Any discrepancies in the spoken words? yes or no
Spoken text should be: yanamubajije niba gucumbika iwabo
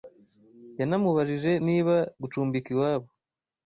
no